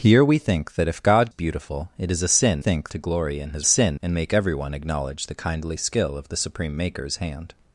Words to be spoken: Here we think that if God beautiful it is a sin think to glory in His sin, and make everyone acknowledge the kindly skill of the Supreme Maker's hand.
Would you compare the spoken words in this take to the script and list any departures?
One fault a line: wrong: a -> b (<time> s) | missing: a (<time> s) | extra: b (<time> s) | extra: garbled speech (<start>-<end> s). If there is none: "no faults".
no faults